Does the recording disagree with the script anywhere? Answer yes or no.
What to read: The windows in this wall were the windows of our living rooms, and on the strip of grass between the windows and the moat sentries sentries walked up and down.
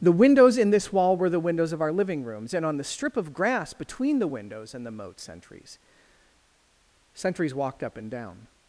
no